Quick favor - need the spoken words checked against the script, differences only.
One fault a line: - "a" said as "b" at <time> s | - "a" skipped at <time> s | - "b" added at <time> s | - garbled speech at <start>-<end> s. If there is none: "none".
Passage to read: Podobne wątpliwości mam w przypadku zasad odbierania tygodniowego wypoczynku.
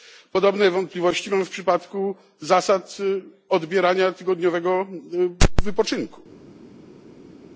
none